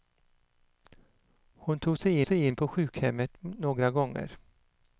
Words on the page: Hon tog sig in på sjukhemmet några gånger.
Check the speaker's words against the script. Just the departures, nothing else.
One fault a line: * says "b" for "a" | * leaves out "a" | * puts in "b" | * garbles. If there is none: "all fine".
* puts in "sig"